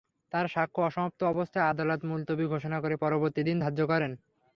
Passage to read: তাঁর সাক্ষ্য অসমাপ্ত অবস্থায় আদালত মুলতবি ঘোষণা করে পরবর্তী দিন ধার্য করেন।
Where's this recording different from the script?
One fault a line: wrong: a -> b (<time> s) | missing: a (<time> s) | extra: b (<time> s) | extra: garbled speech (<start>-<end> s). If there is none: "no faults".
no faults